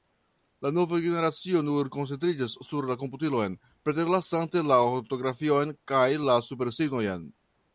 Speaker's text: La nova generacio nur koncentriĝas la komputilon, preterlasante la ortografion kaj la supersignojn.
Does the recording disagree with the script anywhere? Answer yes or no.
yes